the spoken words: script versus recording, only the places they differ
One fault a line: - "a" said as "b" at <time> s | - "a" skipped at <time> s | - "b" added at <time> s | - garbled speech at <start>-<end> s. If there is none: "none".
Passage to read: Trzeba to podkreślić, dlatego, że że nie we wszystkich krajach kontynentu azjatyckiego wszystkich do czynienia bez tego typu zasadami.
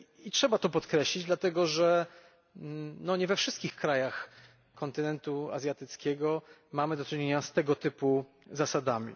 - "że" skipped at 2.0 s
- "wszystkich" said as "mamy" at 6.7 s
- "bez" said as "z" at 7.4 s